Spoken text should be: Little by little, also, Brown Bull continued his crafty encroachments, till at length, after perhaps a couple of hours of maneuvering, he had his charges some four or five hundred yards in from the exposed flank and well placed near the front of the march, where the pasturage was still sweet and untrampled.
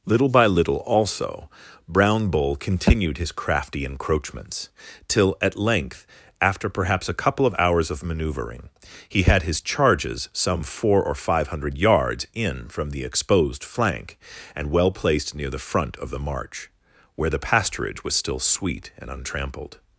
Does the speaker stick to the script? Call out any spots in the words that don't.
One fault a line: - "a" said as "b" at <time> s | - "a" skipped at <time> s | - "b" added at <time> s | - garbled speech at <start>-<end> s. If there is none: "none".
none